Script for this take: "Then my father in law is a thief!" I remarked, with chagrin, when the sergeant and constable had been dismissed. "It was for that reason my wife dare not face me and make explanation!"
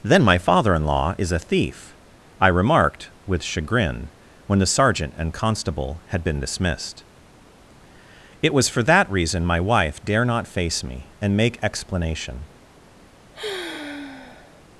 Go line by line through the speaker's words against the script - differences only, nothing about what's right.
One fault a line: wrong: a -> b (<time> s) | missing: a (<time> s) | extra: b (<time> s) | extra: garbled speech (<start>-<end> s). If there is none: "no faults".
no faults